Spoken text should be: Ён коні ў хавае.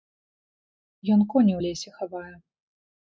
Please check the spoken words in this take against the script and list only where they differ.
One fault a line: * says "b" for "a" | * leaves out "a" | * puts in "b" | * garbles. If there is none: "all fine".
* puts in "лесе"